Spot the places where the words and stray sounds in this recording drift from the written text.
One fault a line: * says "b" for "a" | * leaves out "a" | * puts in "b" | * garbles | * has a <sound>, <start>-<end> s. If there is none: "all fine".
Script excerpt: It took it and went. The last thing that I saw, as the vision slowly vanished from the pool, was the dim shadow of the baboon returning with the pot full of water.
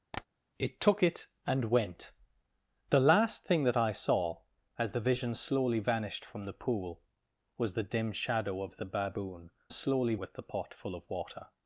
* has a tap, 0.1-0.2 s
* says "slowly" for "returning"